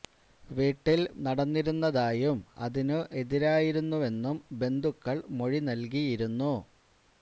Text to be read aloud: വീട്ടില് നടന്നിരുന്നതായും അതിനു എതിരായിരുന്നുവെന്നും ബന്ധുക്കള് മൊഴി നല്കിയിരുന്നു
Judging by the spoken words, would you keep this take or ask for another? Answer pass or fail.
pass